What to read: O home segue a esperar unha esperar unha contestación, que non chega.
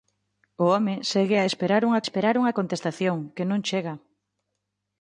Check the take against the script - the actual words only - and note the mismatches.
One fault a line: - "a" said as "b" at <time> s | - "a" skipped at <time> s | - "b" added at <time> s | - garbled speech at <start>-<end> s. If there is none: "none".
none